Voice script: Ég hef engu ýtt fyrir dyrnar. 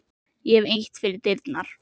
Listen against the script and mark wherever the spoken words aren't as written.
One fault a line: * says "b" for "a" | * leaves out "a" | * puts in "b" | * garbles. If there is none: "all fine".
* leaves out "engu"